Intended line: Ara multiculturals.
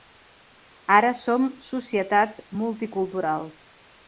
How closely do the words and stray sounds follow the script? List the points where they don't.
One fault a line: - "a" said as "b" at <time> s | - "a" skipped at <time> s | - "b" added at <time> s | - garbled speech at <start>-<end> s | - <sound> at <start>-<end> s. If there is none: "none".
- "som societats" added at 1.2 s